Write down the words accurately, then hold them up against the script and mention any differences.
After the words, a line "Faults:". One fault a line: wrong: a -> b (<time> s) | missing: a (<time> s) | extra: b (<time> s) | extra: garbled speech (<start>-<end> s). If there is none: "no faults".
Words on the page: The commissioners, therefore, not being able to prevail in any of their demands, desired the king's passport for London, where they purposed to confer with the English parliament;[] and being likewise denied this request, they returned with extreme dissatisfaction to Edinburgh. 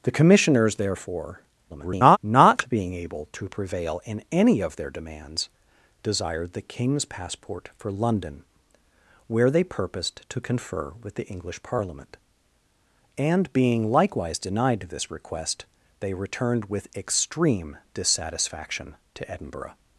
The commissioners, therefore, [garbled] not being able to prevail in any of their demands, desired the king's passport for London, where they purposed to confer with the English parliament;[] and being likewise denied this request, they returned with extreme dissatisfaction to Edinburgh.
Faults:
extra: garbled speech (1.7-2.2 s)